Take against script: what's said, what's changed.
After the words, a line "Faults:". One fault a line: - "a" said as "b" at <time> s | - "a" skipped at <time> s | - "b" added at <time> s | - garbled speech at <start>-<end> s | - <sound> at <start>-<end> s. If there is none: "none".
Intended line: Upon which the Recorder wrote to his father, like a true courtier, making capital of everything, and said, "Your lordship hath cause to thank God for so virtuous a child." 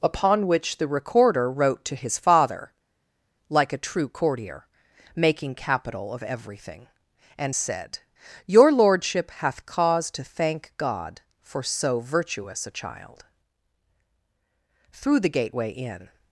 Upon which the Recorder wrote to his father, like a true courtier, making capital of everything, and said, "Your lordship hath cause to thank God for so virtuous a child." Through the gateway in
Faults:
- "Through the gateway in" added at 14.9 s